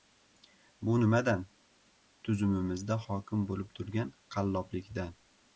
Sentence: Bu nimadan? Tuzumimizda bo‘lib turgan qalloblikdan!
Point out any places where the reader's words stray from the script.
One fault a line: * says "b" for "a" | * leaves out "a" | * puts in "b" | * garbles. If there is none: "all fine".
* puts in "hokim"